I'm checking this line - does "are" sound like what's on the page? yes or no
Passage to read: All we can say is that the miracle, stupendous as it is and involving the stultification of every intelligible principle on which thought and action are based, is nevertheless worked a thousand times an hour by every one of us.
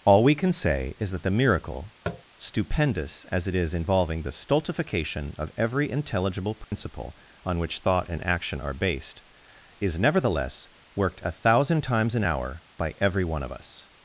yes